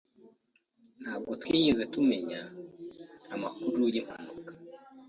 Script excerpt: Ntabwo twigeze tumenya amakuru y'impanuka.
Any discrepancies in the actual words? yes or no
no